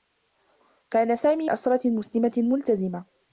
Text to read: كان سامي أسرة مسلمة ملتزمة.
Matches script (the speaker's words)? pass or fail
pass